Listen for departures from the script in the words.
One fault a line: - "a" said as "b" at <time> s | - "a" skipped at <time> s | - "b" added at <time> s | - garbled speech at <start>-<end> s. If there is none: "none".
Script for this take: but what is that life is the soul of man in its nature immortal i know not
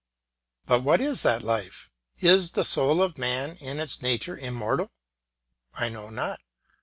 none